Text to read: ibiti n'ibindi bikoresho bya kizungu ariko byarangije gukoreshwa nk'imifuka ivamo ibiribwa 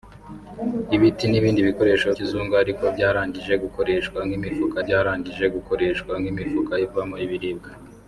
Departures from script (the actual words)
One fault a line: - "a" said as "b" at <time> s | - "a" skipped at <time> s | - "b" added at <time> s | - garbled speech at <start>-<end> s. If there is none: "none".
- "bya" skipped at 2.1 s
- "byarangije gukoreshwa nk'imifuka" added at 4.8 s